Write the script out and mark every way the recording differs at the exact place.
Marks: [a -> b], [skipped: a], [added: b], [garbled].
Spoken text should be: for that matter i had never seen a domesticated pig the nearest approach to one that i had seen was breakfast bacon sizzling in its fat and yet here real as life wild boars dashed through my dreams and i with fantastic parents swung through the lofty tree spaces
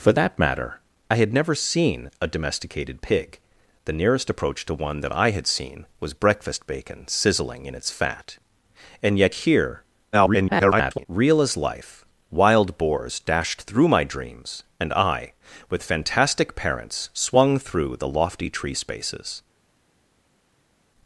for that matter i had never seen a domesticated pig the nearest approach to one that i had seen was breakfast bacon sizzling in its fat and yet here [garbled] real as life wild boars dashed through my dreams and i with fantastic parents swung through the lofty tree spaces